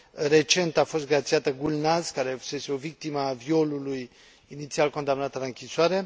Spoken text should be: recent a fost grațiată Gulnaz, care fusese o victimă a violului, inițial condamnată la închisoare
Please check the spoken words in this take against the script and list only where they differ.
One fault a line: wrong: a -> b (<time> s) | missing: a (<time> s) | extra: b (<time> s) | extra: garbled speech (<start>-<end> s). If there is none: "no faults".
no faults